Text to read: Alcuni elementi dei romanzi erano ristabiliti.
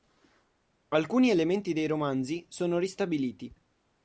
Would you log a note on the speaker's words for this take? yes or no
yes